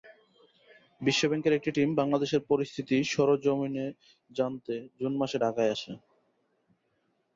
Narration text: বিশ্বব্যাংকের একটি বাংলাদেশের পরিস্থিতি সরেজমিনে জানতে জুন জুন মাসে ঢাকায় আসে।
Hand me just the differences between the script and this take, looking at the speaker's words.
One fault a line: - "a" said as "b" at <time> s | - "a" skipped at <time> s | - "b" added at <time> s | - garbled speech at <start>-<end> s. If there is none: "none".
- "টিম" added at 1.7 s
- "জুন" skipped at 5.1 s